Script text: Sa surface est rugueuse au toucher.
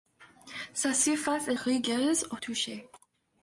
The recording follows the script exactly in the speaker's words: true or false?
true